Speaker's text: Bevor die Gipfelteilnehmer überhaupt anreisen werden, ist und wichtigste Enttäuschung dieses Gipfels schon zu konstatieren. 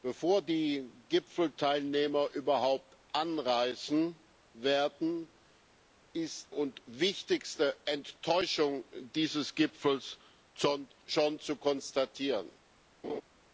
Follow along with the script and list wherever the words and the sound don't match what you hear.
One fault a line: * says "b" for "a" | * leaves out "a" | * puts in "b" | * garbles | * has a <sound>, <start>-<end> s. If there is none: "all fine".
* has a laugh, 13.0-13.2 s